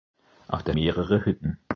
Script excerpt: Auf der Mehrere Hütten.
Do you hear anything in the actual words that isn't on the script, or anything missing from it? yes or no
no